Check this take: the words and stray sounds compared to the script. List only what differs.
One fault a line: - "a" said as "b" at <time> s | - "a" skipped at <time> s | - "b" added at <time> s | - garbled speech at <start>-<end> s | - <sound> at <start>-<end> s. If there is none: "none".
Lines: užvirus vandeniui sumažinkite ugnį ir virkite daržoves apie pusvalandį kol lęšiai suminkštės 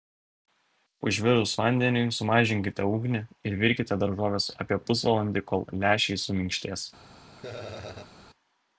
- laugh at 7.4-8.1 s